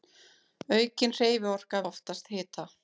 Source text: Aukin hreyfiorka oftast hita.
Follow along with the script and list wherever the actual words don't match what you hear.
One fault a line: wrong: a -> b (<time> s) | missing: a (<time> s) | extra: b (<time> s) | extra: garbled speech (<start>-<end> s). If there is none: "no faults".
no faults